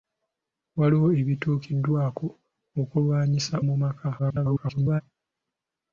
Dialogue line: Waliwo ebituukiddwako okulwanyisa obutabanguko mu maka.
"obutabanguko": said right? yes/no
no